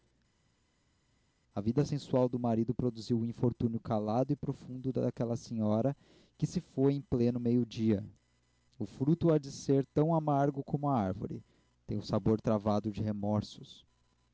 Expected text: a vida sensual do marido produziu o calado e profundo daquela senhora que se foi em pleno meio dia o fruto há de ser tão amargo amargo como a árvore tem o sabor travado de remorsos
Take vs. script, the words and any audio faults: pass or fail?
fail